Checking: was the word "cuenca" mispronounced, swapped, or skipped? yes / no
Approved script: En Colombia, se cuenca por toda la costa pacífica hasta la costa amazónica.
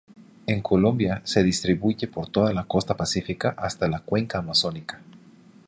yes